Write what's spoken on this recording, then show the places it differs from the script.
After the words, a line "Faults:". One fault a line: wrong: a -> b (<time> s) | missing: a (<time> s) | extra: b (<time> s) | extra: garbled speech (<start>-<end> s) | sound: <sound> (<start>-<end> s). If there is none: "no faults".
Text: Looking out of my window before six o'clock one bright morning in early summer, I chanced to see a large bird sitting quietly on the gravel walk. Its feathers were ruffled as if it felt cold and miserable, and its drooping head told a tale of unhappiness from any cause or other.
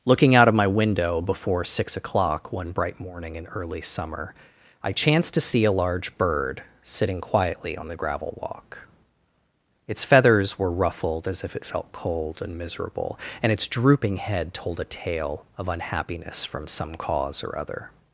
Looking out of my window before six o'clock one bright morning in early summer, I chanced to see a large bird sitting quietly on the gravel walk. Its feathers were ruffled as if it felt cold and miserable, and its drooping head told a tale of unhappiness from some cause or other.
Faults:
wrong: any -> some (16.7 s)